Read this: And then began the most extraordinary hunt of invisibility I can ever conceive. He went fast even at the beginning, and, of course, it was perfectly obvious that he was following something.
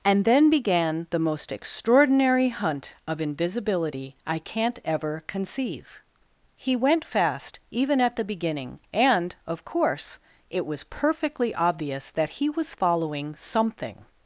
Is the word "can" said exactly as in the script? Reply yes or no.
no